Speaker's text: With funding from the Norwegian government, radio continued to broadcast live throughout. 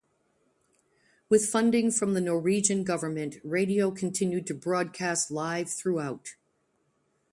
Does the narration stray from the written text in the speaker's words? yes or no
no